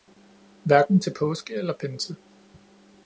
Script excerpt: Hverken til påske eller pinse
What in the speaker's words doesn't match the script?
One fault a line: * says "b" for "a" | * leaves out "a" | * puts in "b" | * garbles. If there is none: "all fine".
all fine